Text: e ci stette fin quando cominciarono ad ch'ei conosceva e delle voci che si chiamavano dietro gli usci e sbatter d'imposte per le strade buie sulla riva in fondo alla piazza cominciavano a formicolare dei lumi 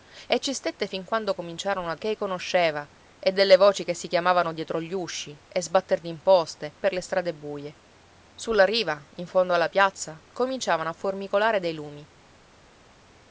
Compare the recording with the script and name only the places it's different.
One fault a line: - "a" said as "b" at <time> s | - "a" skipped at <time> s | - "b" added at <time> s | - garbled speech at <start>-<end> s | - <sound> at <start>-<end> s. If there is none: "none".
none